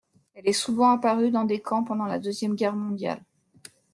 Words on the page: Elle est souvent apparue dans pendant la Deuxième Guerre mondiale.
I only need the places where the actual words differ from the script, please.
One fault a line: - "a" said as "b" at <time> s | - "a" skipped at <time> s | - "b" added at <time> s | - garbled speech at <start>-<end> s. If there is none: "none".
- "des camps" added at 1.4 s